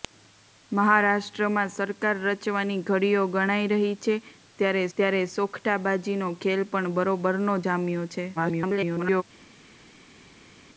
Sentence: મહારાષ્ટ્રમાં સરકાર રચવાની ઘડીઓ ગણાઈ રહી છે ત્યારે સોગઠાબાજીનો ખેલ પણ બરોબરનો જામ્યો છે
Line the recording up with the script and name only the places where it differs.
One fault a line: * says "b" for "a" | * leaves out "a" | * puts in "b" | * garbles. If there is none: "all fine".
* puts in "ત્યારે"
* garbles